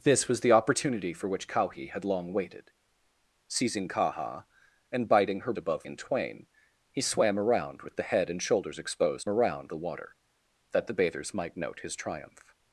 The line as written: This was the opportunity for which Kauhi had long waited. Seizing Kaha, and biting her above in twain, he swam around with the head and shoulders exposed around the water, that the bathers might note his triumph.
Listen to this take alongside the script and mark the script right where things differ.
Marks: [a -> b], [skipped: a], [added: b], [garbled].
This was the opportunity for which Kauhi had long waited. Seizing Kaha, and biting her above in twain, he swam around with the head and shoulders exposed around the water, that the bathers might note his triumph.